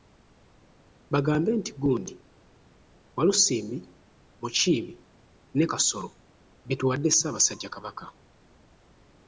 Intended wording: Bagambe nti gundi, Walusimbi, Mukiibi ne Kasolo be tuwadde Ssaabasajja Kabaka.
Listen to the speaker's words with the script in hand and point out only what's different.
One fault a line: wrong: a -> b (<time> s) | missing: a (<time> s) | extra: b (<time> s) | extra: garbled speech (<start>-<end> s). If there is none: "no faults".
no faults